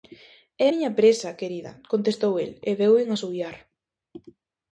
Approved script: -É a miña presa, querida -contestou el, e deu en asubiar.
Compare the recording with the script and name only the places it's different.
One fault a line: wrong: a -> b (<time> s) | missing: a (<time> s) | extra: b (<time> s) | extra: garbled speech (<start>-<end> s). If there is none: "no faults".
missing: a (0.7 s)